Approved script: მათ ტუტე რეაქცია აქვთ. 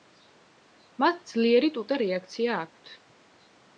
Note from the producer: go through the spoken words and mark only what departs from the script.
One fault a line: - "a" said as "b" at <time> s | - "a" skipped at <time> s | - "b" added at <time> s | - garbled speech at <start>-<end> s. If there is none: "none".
- "ძლიერი" added at 1.3 s